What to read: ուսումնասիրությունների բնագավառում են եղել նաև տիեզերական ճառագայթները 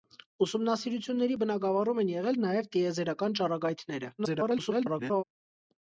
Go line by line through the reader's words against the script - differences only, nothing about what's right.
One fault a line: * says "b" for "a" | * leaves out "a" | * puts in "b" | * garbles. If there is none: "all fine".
* garbles